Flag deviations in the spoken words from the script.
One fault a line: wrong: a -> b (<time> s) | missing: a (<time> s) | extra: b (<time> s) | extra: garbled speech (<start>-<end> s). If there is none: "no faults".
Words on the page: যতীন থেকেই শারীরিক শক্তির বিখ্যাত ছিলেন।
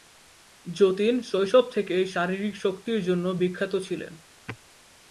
extra: শৈশব (1.2 s)
extra: জন্য (3.0 s)